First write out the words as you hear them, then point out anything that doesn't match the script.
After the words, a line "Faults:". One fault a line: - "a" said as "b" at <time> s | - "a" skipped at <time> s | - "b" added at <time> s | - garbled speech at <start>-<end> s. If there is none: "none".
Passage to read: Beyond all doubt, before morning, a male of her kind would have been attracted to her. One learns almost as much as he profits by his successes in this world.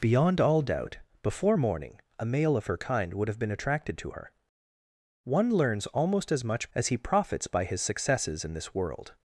Beyond all doubt, before morning, a male of her kind would have been attracted to her. One learns almost as much as he profits by his successes in this world.
Faults:
none